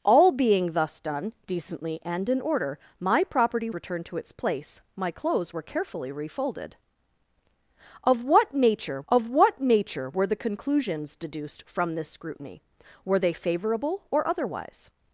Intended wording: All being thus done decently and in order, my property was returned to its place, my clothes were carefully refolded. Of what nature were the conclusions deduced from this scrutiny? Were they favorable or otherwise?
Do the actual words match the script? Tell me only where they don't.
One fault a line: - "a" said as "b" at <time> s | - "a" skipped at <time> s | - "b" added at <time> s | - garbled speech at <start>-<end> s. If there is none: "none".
- "was" skipped at 3.7 s
- "of what nature" added at 9.1 s